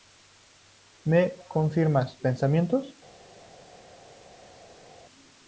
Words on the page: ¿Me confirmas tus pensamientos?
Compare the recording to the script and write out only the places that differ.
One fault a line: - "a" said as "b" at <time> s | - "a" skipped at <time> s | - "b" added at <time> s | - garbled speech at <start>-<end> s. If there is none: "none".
- "tus" skipped at 2.2 s